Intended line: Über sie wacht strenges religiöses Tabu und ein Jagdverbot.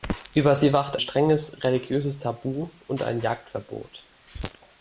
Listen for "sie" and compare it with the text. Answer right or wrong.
right